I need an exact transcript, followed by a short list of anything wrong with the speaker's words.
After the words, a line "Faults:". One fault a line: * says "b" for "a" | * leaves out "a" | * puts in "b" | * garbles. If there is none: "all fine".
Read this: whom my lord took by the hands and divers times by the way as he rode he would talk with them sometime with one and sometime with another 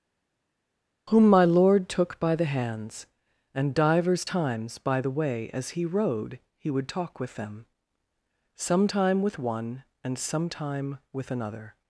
whom my lord took by the hands and divers times by the way as he rode he would talk with them sometime with one and sometime with another
Faults:
all fine